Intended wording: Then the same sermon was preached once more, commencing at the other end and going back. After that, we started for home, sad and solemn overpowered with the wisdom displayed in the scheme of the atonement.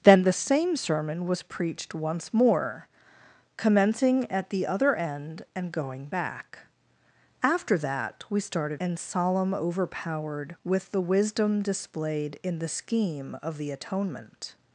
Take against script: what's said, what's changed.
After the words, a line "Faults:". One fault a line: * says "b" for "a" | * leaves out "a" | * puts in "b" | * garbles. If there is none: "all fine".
Then the same sermon was preached once more, commencing at the other end and going back. After that, we started and solemn overpowered with the wisdom displayed in the scheme of the atonement.
Faults:
* leaves out "for home sad"